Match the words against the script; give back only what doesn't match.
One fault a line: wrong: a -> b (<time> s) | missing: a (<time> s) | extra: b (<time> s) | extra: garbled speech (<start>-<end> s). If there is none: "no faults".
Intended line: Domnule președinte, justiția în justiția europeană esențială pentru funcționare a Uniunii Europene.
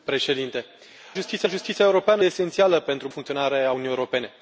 no faults